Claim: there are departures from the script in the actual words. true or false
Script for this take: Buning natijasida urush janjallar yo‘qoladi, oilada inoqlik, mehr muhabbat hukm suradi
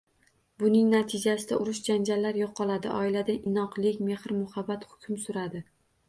false